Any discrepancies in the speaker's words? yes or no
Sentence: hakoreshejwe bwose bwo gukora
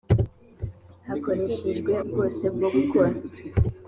no